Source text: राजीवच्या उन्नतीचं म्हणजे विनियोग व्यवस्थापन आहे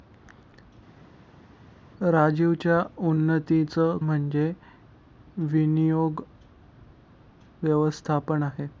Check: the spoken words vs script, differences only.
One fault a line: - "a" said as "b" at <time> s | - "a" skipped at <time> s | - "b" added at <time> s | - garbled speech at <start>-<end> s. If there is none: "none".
none